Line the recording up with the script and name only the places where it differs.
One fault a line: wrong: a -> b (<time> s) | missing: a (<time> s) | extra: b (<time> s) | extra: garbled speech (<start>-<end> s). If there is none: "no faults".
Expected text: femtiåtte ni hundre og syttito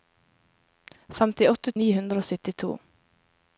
no faults